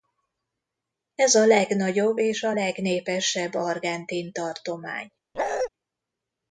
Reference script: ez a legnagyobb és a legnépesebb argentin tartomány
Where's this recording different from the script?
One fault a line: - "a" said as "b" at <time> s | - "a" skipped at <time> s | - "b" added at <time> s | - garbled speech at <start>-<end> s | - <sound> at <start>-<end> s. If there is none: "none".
- bark at 5.3-5.7 s